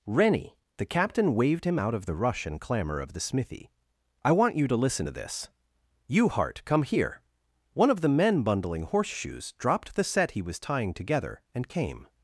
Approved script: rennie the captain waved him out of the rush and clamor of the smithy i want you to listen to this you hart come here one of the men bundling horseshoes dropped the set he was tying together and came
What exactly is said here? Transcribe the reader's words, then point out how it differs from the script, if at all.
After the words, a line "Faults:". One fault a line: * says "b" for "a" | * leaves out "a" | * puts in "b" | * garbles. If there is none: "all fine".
rennie the captain waved him out of the rush and clamor of the smithy i want you to listen to this you hart come here one of the men bundling horseshoes dropped the set he was tying together and came
Faults:
all fine